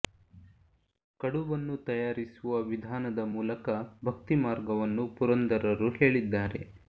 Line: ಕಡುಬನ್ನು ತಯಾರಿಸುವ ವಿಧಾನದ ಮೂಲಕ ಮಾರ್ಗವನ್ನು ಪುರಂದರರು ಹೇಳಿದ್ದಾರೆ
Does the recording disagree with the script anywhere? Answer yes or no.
yes